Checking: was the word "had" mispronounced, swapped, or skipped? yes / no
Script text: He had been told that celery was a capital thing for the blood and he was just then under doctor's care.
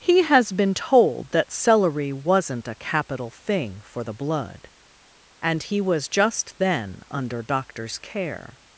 yes